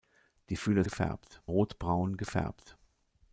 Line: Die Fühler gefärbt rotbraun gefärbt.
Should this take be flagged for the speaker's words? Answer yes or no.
no